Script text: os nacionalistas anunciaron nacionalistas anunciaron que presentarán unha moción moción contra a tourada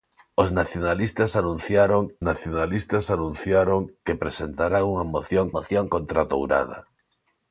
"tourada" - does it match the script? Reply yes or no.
yes